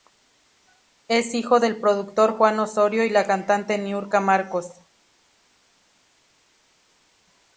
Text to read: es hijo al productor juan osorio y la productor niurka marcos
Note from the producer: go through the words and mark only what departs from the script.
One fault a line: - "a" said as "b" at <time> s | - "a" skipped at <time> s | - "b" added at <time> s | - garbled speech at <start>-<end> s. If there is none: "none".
- "al" said as "del" at 1.6 s
- "productor" said as "cantante" at 3.2 s